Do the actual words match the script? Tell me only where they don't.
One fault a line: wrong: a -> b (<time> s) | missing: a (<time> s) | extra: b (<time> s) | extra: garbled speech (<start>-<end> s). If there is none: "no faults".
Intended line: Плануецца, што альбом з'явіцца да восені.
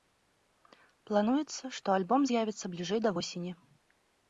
extra: бліжэй (2.8 s)